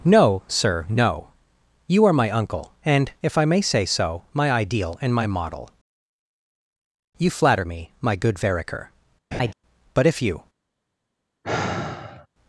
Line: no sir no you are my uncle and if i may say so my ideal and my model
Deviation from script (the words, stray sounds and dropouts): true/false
true